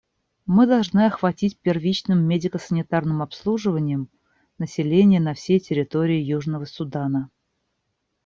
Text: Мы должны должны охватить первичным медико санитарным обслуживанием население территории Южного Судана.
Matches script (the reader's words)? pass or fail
fail